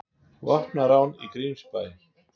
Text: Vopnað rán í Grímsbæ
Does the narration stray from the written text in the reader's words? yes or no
no